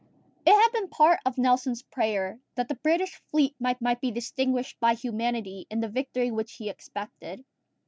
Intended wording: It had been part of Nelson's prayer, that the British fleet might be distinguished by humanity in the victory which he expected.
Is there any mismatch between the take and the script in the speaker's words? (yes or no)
yes